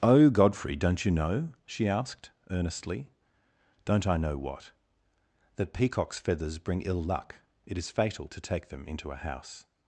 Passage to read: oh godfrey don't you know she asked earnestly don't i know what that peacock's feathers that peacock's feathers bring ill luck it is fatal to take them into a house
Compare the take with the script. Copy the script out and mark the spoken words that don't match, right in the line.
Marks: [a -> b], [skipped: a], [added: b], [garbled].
oh godfrey don't you know she asked earnestly don't i know what that peacock's feathers [skipped: that peacock's feathers] bring ill luck it is fatal to take them into a house